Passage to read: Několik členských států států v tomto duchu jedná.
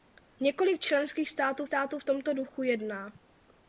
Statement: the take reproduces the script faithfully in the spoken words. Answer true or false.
true